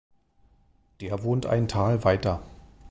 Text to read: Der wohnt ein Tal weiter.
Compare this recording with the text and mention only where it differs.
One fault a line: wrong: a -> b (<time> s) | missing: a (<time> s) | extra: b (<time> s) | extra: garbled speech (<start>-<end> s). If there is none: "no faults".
no faults